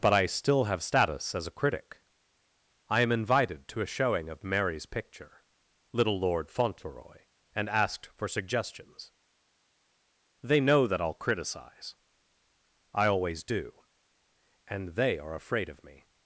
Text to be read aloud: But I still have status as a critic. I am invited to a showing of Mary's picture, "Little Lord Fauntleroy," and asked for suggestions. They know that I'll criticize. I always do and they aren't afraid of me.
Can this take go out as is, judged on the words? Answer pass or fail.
fail